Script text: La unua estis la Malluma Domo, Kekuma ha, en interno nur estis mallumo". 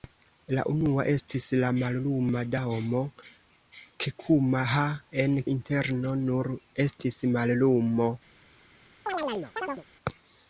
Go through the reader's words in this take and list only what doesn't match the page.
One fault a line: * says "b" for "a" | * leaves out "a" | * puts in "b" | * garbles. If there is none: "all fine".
all fine